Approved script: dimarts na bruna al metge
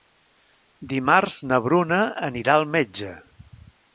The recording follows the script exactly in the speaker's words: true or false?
false